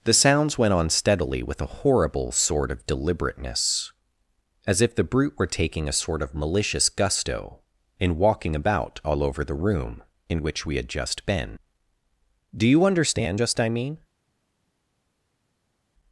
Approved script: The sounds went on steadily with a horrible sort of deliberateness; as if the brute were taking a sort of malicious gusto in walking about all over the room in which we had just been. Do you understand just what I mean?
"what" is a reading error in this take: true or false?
true